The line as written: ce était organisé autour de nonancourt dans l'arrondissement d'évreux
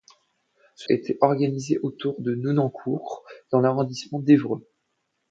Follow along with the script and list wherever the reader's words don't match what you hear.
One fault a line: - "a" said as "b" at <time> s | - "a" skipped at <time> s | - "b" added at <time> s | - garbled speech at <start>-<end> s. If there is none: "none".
none